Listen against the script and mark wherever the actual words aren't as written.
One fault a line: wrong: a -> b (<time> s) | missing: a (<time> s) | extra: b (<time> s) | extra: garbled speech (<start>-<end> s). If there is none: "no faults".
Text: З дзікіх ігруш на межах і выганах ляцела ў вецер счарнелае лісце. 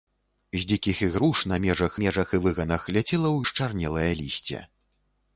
extra: межах (2.0 s)
missing: вецер (3.4 s)